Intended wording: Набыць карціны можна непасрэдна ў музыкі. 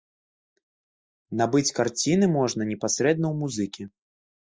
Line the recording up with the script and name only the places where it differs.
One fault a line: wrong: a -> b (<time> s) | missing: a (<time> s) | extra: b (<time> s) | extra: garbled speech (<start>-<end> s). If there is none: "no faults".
no faults